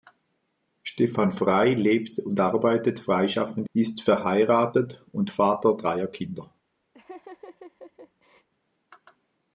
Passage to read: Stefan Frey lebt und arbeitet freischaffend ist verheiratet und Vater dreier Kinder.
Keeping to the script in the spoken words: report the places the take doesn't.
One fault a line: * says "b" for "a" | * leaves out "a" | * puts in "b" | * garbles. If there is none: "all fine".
all fine